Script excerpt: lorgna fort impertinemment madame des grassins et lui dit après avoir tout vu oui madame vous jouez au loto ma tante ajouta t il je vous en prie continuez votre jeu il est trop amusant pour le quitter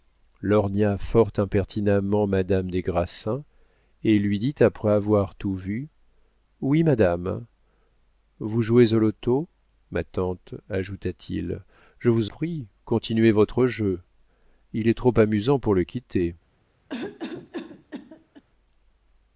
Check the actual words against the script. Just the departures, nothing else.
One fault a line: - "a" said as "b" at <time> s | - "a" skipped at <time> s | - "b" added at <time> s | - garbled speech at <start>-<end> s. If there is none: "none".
- "en" skipped at 12.3 s